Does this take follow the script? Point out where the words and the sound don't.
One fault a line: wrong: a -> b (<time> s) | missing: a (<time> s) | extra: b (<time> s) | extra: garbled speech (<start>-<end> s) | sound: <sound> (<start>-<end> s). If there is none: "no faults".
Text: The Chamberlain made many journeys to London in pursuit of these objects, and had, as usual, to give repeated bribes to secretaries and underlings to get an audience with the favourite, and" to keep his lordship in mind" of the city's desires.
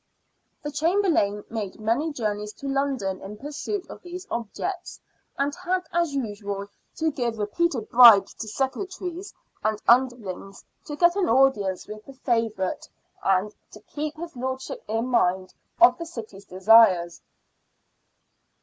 no faults